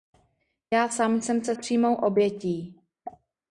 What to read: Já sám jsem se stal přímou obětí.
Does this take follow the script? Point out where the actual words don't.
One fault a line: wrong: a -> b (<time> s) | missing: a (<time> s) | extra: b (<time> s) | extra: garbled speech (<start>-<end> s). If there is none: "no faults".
missing: stal (1.6 s)